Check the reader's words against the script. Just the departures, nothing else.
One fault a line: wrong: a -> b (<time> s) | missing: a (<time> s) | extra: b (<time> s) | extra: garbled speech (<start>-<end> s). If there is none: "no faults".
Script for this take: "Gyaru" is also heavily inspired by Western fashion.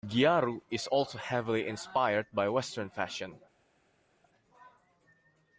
no faults